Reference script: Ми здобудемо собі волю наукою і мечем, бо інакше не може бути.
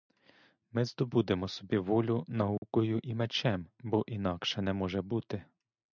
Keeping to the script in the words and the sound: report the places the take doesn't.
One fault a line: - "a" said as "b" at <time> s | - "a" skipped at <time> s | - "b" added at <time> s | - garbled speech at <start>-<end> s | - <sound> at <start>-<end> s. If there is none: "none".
- dropout at 2.6-2.6 s